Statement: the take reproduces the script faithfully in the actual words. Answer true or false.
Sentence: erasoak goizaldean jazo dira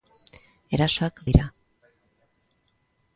false